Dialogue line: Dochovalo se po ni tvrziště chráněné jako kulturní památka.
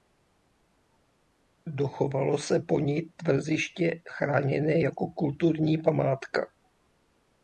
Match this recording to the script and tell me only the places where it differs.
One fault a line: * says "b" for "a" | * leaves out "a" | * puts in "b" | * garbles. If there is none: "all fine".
all fine